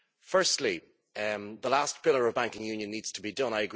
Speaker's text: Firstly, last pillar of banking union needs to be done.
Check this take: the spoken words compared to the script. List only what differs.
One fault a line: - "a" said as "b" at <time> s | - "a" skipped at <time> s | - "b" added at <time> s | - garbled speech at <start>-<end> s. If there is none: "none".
- "the" added at 1.1 s